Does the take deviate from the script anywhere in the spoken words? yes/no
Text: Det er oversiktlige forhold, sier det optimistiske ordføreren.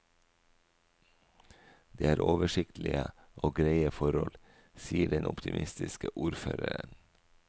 yes